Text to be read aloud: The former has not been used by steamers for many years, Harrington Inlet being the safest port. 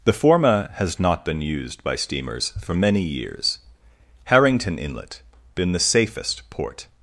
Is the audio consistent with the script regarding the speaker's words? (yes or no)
no